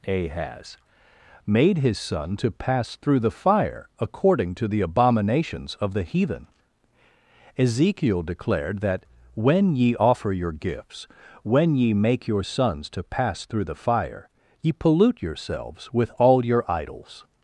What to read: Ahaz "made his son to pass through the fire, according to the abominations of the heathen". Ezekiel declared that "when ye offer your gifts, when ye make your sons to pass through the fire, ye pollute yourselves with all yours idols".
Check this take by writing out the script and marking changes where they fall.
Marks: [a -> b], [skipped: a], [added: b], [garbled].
Ahaz "made his son to pass through the fire, according to the abominations of the heathen". Ezekiel declared that "when ye offer your gifts, when ye make your sons to pass through the fire, ye pollute yourselves with all [yours -> your] idols".